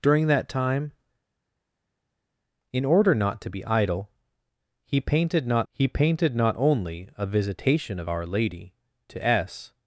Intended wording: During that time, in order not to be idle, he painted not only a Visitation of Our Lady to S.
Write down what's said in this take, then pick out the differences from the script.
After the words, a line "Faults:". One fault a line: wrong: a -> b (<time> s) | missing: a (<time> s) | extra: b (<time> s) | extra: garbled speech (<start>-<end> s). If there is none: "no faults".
During that time, in order not to be idle, he painted not he painted not only a Visitation of Our Lady to S.
Faults:
extra: he painted not (5.7 s)